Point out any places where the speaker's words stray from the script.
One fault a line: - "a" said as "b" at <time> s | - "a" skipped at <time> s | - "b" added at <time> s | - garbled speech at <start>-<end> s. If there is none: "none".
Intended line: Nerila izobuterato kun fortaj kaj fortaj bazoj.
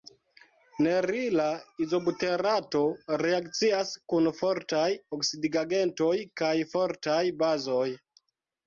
- "reakcias" added at 3.2 s
- "oksidigagentoj" added at 5.2 s